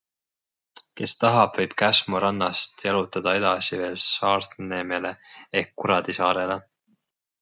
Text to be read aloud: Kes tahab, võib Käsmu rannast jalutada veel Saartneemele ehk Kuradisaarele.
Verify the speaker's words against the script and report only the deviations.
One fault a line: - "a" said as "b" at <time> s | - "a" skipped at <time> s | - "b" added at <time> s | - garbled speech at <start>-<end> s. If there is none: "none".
- "edasi" added at 3.4 s